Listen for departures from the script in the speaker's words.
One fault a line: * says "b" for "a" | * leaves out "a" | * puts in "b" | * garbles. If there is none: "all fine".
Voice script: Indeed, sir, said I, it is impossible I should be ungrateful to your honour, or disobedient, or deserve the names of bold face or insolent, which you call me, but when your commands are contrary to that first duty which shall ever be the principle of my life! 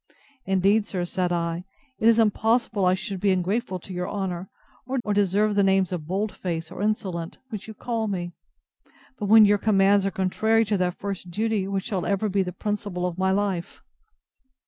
* leaves out "disobedient"